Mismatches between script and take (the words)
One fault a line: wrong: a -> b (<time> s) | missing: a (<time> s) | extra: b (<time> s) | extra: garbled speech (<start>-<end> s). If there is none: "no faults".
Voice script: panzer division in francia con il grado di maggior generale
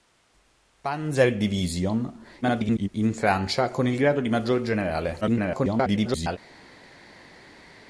extra: garbled speech (2.4-2.9 s)
extra: garbled speech (5.2-6.4 s)